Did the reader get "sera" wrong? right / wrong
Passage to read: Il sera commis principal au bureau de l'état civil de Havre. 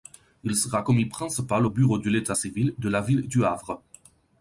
right